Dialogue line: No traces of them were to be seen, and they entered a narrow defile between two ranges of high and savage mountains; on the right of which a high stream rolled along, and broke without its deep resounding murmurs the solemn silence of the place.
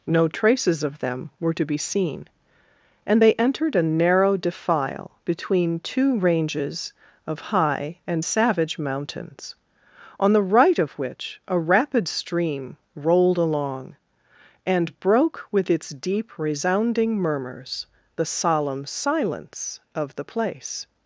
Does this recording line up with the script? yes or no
no